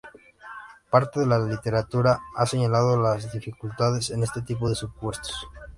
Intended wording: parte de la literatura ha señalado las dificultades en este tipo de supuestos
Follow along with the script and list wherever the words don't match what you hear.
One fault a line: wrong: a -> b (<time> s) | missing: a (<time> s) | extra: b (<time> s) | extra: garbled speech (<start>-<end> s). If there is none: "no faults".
no faults